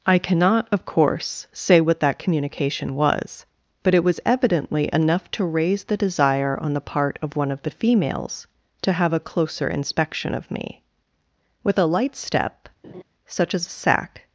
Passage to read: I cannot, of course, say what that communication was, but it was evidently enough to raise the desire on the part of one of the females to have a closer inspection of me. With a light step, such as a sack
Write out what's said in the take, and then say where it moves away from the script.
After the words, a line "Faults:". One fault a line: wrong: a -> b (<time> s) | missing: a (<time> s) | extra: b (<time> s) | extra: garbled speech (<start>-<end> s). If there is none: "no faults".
I cannot, of course, say what that communication was, but it was evidently enough to raise the desire on the part of one of the females to have a closer inspection of me. With a light step, such as a sack
Faults:
no faults